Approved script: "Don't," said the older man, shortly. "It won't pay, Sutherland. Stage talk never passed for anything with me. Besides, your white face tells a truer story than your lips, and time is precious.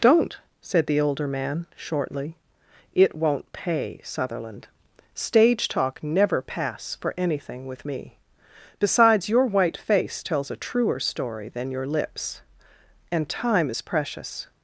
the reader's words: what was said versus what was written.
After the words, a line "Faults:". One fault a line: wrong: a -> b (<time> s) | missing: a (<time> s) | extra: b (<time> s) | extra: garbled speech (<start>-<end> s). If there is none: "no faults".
"Don't," said the older man, shortly. "It won't pay, Sutherland. Stage talk never pass for anything with me. Besides, your white face tells a truer story than your lips, and time is precious.
Faults:
wrong: passed -> pass (6.4 s)